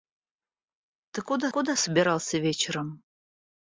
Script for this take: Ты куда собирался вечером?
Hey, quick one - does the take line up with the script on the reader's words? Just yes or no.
no